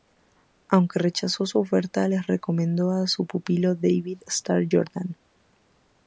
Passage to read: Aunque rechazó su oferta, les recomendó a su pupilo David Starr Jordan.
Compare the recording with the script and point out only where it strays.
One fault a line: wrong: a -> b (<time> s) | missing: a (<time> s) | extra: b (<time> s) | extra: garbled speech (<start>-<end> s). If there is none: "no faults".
no faults